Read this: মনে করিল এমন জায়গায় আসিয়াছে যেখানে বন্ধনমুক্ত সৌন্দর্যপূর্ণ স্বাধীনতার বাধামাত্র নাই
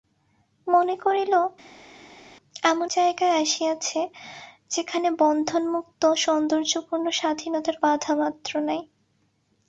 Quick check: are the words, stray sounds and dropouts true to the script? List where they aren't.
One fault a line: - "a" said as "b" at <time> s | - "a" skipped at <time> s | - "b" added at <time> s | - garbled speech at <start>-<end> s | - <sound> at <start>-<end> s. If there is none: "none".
none